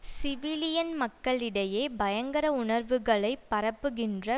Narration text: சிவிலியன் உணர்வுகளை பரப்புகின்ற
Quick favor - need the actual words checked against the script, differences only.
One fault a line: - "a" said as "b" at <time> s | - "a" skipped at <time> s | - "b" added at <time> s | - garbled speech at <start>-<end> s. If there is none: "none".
- "மக்களிடையே பயங்கர" added at 0.9 s